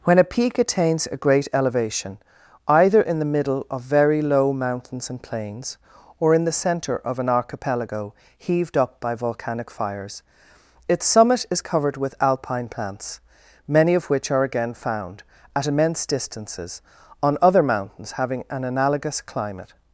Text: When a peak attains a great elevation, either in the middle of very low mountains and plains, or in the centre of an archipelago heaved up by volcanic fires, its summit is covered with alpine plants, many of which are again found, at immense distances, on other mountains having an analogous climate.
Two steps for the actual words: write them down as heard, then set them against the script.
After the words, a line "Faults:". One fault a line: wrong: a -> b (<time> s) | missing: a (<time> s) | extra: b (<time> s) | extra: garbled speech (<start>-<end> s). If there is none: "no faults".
When a peak attains a great elevation, either in the middle of very low mountains and plains, or in the centre of an archipelago heaved up by volcanic fires, its summit is covered with alpine plants, many of which are again found, at immense distances, on other mountains having an analogous climate.
Faults:
no faults